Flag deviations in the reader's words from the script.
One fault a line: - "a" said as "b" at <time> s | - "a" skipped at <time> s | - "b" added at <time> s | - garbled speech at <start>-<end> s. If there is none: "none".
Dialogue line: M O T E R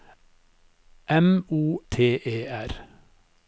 none